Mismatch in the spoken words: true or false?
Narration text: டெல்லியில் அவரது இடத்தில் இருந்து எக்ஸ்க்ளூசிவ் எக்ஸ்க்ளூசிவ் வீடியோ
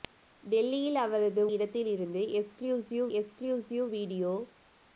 false